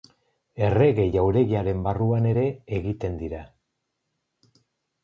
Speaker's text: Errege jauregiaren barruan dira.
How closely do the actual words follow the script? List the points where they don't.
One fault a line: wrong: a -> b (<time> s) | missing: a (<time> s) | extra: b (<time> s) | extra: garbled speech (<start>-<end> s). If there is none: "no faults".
extra: ere egiten (2.3 s)